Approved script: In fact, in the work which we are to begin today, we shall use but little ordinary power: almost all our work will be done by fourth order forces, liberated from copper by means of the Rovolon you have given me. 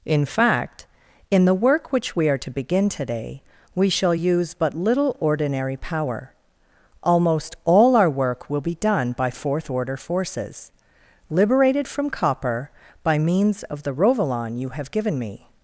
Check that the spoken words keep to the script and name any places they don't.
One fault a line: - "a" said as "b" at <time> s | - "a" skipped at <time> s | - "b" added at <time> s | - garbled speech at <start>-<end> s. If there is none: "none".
none